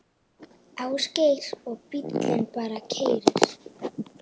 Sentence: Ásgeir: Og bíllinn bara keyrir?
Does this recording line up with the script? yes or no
yes